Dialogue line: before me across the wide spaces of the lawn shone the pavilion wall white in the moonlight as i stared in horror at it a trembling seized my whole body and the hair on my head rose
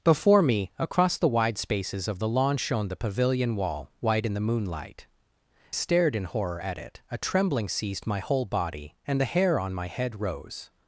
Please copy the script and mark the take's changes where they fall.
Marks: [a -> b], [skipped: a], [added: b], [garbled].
before me across the wide spaces of the lawn shone the pavilion wall white in the moonlight [skipped: as i] stared in horror at it a trembling seized my whole body and the hair on my head rose